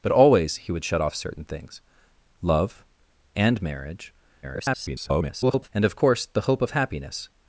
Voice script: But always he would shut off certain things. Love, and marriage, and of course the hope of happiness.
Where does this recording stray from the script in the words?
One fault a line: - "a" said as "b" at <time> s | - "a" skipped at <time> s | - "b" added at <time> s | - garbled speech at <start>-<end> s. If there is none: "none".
- garbled speech at 4.4-5.7 s